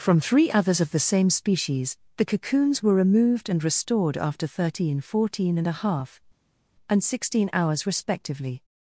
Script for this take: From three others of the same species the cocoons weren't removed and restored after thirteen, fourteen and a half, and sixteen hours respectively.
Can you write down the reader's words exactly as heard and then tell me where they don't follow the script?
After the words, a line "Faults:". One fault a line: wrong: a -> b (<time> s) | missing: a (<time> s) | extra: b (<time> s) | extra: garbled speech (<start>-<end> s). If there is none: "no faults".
From three others of the same species the cocoons were removed and restored after thirteen, fourteen and a half, and sixteen hours respectively.
Faults:
wrong: weren't -> were (2.8 s)